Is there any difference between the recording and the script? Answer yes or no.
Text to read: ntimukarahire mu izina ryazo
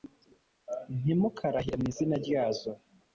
no